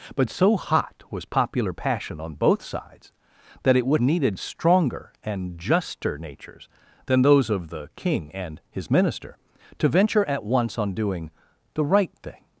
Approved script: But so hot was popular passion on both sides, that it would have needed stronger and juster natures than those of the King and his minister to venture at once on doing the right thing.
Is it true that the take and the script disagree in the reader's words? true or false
true